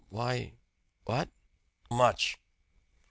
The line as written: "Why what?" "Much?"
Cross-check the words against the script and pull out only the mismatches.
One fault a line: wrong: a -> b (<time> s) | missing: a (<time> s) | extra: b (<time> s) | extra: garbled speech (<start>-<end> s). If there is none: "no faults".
no faults